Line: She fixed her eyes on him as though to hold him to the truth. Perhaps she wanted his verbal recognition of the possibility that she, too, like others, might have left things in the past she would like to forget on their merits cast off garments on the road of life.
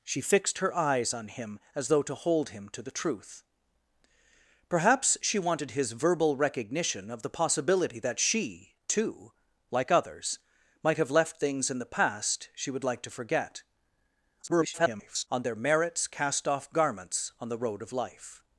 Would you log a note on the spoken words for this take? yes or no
yes